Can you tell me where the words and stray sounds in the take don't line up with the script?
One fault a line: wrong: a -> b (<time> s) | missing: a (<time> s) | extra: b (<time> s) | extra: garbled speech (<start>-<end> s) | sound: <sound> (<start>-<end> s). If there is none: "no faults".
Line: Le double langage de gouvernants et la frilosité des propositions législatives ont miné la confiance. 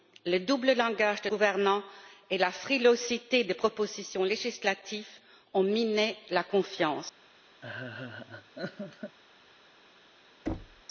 sound: laugh (7.6-9.2 s)
sound: thud (10.5-10.8 s)